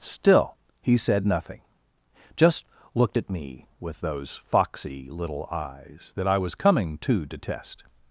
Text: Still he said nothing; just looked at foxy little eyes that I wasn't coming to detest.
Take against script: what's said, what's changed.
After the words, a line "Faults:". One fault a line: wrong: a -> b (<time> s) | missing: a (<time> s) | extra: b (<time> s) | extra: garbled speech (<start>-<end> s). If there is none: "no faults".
Still he said nothing; just looked at me with those foxy little eyes that I was coming to detest.
Faults:
extra: me with those (3.3 s)
wrong: wasn't -> was (6.4 s)